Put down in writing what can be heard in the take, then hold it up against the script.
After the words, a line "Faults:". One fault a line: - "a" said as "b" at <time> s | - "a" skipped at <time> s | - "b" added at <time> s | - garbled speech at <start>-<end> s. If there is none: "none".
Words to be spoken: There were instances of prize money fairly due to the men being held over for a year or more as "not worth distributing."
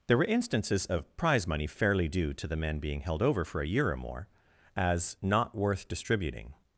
There were instances of prize money fairly due to the men being held over for a year or more as "not worth distributing."
Faults:
none